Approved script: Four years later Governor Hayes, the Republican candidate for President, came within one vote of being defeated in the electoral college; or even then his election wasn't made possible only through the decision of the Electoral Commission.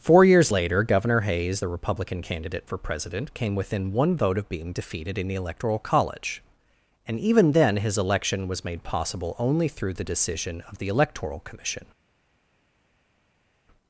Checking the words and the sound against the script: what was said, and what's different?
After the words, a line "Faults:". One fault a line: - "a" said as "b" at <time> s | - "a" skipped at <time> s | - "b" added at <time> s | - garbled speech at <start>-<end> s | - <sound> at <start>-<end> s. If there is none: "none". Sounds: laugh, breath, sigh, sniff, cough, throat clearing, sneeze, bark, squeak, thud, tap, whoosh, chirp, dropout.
Four years later Governor Hayes, the Republican candidate for President, came within one vote of being defeated in the electoral college; and even then his election was made possible only through the decision of the Electoral Commission.
Faults:
- "or" said as "and" at 7.1 s
- "wasn't" said as "was" at 8.5 s